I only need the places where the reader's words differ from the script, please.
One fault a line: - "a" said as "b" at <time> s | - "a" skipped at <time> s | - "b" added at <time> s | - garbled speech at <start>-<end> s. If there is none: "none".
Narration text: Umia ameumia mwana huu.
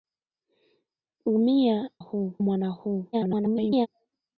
- "ameumia" said as "huu" at 2.0 s
- garbled speech at 3.1-3.9 s